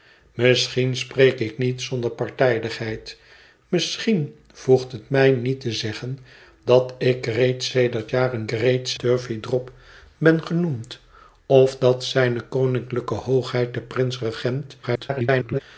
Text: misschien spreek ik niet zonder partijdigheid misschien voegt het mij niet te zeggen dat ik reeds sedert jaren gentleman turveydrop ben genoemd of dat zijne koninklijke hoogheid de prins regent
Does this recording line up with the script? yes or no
no